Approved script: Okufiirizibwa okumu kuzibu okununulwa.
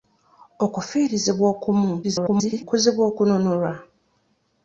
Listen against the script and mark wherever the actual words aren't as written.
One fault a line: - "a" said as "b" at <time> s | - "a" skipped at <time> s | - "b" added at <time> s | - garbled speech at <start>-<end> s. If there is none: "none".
- garbled speech at 2.0-2.6 s